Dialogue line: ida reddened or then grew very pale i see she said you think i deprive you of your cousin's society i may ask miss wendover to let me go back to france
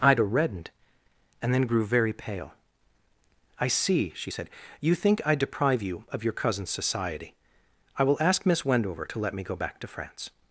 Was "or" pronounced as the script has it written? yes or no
no